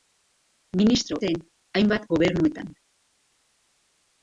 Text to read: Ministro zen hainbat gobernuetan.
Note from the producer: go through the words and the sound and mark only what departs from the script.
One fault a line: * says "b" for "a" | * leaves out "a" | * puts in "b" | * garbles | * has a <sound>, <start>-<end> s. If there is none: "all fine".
all fine